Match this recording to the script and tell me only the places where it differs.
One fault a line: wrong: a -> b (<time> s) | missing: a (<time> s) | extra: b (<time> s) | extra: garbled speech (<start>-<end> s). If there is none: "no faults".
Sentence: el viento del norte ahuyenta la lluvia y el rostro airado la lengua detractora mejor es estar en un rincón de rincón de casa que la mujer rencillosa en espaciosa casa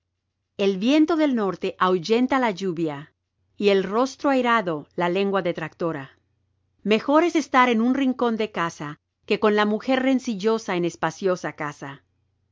missing: rincón de (8.5 s)
extra: con (9.4 s)